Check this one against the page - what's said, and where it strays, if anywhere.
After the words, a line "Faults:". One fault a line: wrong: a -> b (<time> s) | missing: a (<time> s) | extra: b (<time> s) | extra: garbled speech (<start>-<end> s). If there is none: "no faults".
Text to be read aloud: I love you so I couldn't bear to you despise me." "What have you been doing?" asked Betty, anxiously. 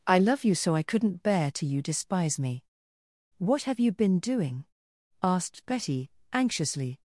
I love you so I couldn't bear to you despise me." "What have you been doing?" asked Betty, anxiously.
Faults:
no faults